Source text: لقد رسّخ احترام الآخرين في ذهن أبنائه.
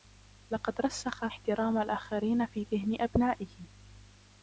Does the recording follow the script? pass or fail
pass